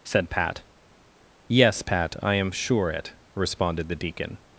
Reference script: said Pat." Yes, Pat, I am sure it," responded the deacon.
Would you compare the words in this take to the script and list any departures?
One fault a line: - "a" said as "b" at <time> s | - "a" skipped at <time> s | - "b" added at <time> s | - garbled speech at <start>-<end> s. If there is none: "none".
none